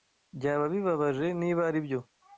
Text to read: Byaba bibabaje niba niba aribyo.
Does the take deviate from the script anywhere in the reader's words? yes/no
yes